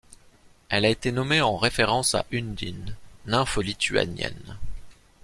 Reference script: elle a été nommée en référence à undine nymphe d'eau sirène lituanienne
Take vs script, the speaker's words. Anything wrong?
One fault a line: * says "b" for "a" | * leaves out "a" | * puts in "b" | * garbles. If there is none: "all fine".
* leaves out "d'eau sirène"